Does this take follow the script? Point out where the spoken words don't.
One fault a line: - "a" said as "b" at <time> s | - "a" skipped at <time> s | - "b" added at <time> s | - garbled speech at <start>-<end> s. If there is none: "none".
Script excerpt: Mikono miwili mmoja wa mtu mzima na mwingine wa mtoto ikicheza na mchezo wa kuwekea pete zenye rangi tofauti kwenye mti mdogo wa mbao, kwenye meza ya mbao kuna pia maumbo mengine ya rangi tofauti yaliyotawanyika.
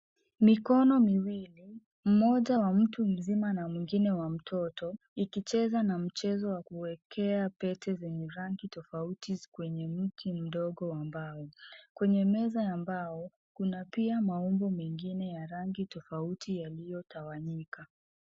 none